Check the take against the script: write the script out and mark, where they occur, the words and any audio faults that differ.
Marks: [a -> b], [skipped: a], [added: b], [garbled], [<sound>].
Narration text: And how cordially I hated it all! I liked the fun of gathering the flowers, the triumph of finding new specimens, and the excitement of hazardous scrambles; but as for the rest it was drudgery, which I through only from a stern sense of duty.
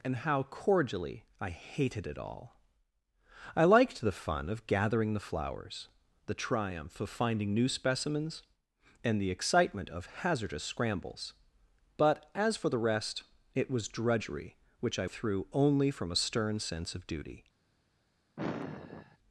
And how cordially I hated it all! I liked the fun of gathering the flowers, the triumph of finding new specimens, and the excitement of hazardous scrambles; but as for the rest it was drudgery, which I through only from a stern sense of duty. [sigh]